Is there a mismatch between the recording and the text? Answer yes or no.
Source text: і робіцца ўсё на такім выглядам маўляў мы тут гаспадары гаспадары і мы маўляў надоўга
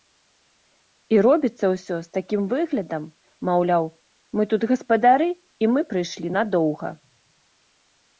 yes